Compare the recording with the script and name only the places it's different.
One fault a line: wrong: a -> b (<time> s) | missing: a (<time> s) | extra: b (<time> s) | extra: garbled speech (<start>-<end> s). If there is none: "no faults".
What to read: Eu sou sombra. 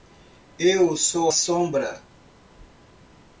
no faults